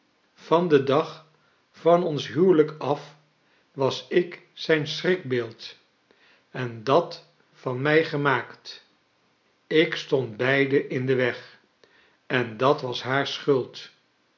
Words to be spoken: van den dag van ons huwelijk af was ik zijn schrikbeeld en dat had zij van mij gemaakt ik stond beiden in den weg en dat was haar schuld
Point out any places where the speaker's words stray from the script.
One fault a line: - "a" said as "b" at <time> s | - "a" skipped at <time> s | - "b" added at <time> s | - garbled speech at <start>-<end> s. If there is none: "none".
- "had zij" skipped at 7.3 s